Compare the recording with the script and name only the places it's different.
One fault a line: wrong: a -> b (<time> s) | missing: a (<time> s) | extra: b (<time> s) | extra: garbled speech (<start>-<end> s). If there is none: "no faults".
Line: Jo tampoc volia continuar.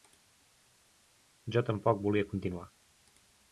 no faults